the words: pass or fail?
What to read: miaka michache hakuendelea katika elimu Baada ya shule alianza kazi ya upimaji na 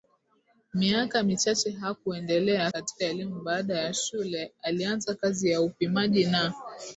pass